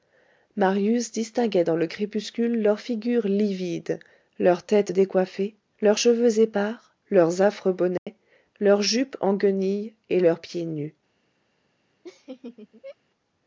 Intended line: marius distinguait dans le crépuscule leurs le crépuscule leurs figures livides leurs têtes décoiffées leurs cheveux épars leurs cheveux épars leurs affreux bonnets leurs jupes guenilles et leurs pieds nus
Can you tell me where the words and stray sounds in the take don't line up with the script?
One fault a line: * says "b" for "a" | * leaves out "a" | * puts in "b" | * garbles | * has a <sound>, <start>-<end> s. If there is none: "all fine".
* leaves out "le crépuscule leurs"
* leaves out "cheveux épars leurs"
* has a dropout, 8.0-8.1 s
* puts in "en"
* has a laugh, 12.0-13.0 s